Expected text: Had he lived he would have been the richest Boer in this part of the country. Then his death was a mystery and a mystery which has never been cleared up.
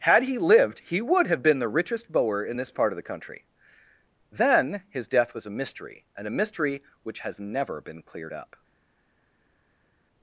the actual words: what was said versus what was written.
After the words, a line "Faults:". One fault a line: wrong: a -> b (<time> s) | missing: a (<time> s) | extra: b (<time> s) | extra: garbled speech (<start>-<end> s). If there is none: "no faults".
Had he lived he would have been the richest Boer in this part of the country. Then his death was a mystery and a mystery which has never been cleared up.
Faults:
no faults